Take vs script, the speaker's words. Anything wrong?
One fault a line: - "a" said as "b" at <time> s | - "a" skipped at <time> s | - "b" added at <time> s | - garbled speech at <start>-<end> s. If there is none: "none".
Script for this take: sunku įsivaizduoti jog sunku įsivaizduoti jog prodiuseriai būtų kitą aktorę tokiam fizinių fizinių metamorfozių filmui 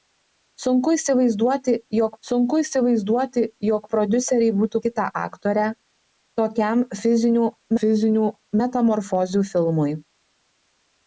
none